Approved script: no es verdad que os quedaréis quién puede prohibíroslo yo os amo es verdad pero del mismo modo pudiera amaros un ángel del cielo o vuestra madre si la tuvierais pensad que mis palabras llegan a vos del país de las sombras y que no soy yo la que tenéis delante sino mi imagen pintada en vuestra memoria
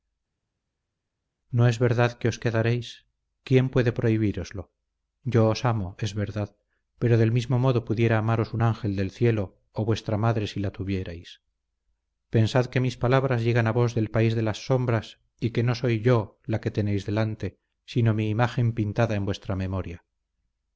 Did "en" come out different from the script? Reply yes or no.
no